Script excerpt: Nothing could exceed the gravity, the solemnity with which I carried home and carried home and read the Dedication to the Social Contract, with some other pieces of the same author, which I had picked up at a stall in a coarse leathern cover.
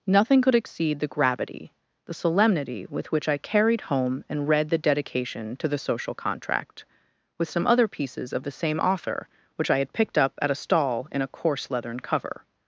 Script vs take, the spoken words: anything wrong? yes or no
yes